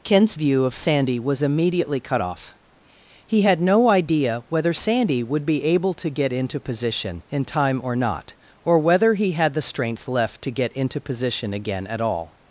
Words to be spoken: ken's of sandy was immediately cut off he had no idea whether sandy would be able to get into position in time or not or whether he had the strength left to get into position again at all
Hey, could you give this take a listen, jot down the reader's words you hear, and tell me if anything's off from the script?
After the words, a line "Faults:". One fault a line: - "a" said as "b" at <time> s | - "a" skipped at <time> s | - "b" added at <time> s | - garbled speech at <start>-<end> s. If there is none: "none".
ken's view of sandy was immediately cut off he had no idea whether sandy would be able to get into position in time or not or whether he had the strength left to get into position again at all
Faults:
- "view" added at 0.3 s